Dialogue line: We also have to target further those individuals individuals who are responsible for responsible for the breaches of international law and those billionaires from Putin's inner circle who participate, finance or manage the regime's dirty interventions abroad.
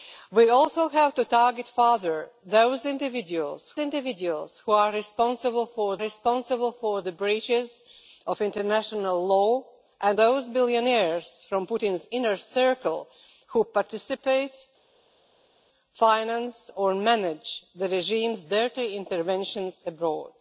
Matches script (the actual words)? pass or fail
pass